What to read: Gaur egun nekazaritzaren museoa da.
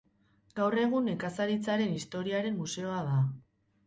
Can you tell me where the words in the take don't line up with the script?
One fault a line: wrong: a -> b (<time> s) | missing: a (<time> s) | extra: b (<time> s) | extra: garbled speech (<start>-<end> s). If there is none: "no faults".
extra: historiaren (2.0 s)